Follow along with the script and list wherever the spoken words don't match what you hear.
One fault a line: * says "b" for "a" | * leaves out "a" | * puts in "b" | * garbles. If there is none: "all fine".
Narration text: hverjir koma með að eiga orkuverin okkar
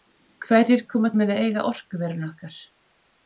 all fine